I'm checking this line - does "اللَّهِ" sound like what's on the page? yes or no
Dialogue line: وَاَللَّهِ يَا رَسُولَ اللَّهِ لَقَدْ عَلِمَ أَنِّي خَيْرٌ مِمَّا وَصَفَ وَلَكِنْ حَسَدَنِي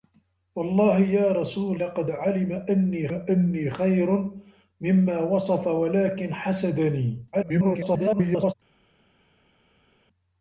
no